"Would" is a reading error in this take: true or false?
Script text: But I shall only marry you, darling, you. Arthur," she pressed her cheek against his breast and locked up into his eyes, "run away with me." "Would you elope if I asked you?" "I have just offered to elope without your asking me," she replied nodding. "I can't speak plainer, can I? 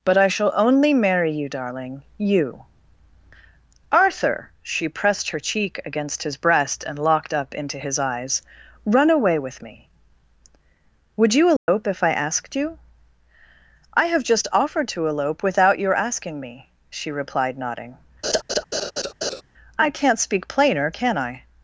false